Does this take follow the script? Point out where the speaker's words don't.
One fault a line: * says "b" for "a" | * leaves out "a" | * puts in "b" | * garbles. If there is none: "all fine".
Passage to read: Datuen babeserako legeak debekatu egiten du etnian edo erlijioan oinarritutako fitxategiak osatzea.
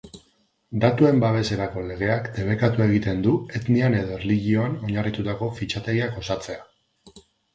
all fine